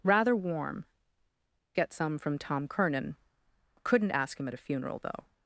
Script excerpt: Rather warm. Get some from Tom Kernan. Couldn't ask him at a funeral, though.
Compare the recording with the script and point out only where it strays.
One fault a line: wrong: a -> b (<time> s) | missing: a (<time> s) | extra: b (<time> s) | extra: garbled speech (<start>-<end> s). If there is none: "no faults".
no faults